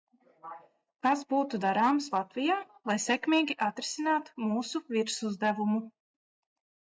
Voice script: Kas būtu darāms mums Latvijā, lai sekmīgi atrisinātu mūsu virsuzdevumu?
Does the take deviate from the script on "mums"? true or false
true